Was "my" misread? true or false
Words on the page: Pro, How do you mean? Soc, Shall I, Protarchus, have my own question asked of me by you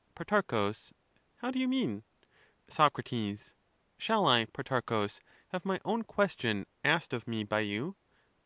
false